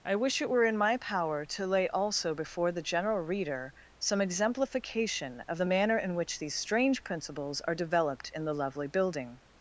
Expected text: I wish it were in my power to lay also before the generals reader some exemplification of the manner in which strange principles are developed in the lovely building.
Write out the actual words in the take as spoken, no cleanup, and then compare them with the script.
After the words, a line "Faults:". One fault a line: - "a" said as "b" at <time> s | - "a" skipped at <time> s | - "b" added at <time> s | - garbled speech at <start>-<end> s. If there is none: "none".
I wish it were in my power to lay also before the general reader some exemplification of the manner in which these strange principles are developed in the lovely building.
Faults:
- "generals" said as "general" at 2.8 s
- "these" added at 6.4 s